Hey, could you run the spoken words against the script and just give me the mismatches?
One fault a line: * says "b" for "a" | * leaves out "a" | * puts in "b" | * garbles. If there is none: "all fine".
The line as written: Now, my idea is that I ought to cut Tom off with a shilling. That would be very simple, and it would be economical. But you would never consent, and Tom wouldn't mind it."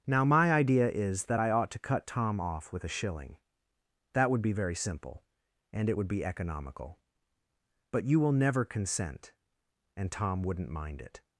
* says "will" for "would"